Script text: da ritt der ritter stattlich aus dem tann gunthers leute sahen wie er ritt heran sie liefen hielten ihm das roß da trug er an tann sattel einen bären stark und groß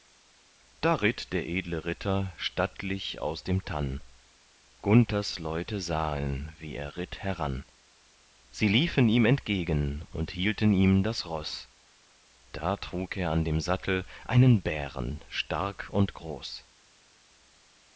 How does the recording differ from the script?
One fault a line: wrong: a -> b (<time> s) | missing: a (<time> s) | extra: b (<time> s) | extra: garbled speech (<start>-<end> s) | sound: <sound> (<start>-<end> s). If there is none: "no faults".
extra: edle (1.5 s)
extra: ihm entgegen und (9.1 s)
wrong: tann -> dem (13.4 s)